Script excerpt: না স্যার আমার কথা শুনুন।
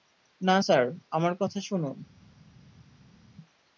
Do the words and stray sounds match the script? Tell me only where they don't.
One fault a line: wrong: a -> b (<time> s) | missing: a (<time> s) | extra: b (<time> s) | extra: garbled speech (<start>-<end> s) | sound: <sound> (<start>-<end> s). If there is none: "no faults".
no faults